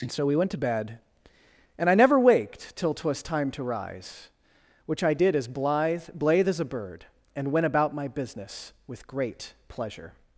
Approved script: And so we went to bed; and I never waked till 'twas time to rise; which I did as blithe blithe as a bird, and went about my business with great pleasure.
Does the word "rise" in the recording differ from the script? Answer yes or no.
no